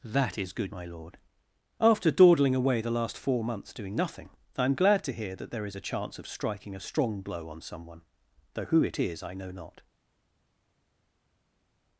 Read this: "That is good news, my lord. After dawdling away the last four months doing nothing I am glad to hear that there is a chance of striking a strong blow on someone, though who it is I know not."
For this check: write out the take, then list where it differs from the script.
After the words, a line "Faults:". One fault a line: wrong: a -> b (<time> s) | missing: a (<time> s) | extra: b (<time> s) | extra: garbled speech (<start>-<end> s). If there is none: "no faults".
"That is good my lord. After dawdling away the last four months doing nothing I am glad to hear that there is a chance of striking a strong blow on someone, though who it is I know not."
Faults:
missing: news (0.7 s)